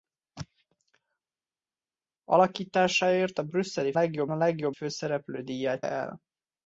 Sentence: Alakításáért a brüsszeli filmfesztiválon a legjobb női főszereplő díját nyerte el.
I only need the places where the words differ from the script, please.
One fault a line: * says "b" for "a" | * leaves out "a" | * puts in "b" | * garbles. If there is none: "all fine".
* says "legjobb" for "filmfesztiválon"
* leaves out "női"
* leaves out "nyerte"